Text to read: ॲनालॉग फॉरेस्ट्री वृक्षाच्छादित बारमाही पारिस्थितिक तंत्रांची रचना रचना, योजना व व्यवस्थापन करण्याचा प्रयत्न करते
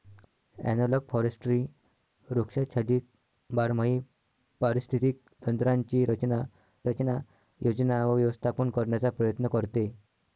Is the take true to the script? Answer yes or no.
yes